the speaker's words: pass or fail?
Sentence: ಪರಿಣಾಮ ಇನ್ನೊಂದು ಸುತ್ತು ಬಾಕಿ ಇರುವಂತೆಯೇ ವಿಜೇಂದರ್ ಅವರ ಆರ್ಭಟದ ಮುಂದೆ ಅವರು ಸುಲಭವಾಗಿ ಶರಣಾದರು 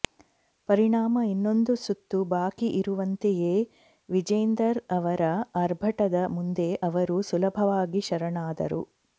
pass